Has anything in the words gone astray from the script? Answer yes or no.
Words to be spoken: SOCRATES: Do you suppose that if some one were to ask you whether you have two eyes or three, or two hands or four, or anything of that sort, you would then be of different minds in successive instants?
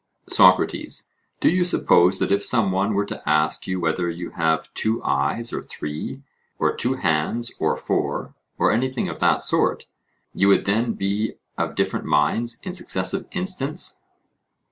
no